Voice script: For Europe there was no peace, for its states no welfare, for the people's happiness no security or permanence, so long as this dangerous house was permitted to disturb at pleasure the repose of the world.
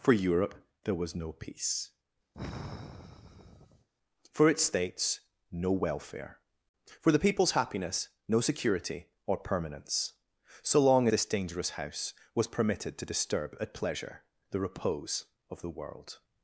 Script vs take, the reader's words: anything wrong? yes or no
yes